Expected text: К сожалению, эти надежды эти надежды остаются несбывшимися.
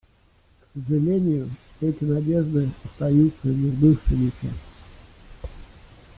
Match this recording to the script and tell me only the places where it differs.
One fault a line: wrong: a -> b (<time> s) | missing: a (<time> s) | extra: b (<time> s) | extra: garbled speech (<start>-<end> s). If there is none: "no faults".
missing: эти надежды (2.7 s)